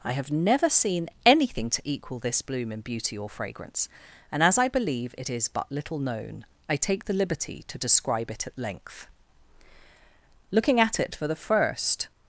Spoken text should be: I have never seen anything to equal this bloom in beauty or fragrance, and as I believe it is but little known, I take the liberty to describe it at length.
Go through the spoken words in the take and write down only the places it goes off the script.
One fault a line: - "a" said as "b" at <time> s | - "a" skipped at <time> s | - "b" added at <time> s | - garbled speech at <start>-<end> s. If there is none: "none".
- "Looking at it for the first" added at 10.5 s